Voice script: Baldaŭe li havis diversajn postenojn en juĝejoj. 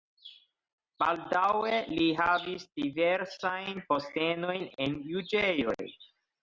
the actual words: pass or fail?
pass